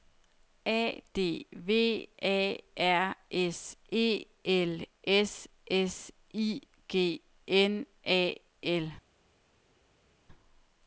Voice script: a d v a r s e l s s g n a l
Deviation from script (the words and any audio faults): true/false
true